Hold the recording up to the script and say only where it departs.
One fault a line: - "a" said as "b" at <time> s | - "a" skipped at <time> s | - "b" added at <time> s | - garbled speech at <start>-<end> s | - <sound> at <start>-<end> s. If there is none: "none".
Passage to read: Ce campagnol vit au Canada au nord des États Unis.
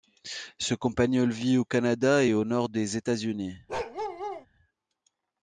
- "et" added at 2.2 s
- bark at 3.7-4.5 s